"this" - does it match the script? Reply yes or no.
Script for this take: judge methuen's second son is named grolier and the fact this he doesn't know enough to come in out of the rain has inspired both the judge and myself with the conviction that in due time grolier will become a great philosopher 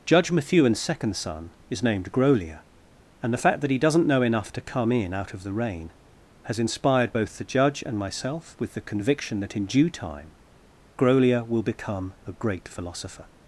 no